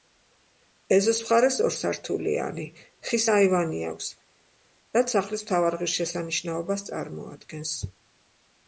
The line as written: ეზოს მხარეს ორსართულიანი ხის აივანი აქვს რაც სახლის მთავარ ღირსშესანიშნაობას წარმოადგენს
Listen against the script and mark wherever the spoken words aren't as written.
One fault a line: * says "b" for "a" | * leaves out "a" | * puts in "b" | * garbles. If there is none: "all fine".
all fine